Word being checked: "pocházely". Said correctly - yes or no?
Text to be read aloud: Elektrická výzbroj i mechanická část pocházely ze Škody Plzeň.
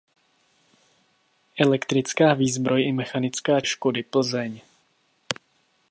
no